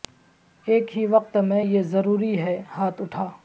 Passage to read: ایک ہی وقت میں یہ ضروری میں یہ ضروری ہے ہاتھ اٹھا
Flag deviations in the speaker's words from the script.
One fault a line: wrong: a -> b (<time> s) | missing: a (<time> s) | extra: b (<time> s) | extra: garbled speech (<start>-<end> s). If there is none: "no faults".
missing: میں یہ ضروری (2.4 s)